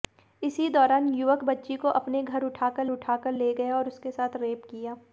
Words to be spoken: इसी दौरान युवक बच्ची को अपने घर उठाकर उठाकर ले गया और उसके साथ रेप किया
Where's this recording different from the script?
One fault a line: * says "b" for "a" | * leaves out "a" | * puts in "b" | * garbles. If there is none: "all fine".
all fine